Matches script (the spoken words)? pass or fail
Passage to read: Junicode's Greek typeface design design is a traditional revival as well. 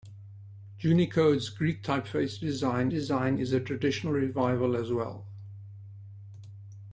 pass